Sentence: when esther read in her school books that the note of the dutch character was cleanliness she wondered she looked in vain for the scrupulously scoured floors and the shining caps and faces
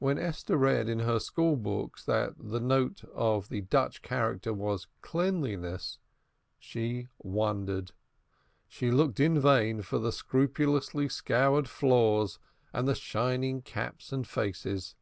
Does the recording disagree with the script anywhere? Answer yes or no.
no